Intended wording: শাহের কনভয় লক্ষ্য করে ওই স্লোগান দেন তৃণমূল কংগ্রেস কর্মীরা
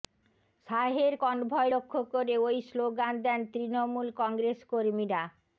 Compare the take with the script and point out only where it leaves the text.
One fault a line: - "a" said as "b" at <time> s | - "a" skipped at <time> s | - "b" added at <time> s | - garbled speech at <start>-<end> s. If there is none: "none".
none